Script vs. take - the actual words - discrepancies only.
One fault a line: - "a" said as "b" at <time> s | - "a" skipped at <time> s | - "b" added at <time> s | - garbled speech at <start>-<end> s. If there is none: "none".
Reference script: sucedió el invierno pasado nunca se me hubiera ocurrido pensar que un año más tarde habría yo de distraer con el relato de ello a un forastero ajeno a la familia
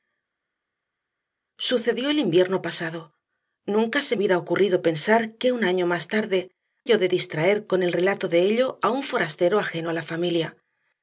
- "me" skipped at 4.2 s
- "habría" skipped at 6.5 s